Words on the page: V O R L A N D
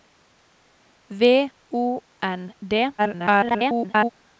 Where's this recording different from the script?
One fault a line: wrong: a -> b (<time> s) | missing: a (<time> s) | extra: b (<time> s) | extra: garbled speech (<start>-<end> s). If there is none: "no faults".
missing: R L A (2.0 s)
extra: garbled speech (3.0-4.1 s)